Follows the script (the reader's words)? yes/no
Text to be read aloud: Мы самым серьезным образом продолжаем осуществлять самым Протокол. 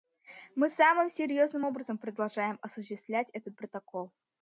no